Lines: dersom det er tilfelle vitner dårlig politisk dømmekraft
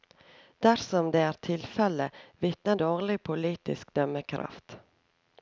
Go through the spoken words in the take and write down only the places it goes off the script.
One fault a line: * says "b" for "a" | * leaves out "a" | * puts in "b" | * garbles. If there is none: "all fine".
all fine